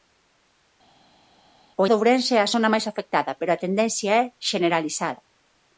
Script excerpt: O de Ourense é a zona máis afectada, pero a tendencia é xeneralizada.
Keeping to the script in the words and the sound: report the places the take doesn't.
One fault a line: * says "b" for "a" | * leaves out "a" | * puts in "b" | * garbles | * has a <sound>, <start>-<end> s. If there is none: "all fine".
all fine